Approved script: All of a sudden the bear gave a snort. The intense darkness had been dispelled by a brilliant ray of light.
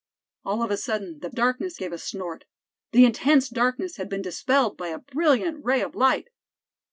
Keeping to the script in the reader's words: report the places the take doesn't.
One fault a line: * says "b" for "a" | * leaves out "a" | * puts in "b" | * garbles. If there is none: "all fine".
* says "darkness" for "bear"